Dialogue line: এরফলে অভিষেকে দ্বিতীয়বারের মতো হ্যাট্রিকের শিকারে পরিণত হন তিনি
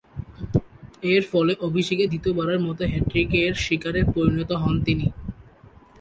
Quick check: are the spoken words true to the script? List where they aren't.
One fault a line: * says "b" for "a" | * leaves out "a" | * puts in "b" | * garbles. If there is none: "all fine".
all fine